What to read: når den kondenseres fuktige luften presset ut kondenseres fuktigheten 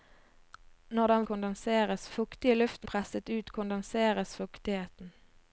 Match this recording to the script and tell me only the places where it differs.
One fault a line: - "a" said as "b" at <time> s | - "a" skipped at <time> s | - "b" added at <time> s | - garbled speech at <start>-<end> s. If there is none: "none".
none